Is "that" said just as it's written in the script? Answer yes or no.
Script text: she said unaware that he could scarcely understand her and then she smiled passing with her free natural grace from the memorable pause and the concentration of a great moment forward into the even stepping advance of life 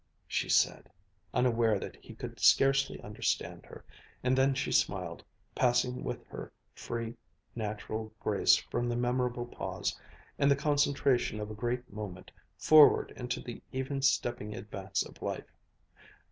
yes